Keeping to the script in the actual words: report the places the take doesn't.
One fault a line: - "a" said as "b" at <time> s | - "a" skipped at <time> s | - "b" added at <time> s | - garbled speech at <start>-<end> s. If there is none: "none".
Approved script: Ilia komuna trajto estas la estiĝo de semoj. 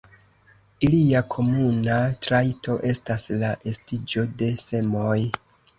none